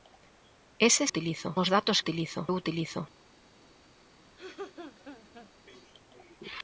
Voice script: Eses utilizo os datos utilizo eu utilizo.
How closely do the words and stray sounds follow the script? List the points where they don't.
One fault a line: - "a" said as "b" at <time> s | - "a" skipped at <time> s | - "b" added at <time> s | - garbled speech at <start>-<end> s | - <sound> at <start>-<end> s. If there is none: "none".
- laugh at 4.4-5.5 s